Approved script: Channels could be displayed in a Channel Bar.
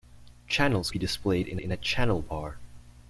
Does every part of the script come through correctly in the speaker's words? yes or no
no